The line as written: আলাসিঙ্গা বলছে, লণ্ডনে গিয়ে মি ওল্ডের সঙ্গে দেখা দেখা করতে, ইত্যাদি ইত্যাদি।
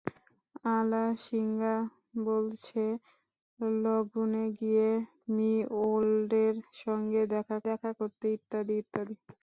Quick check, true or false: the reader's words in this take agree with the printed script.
true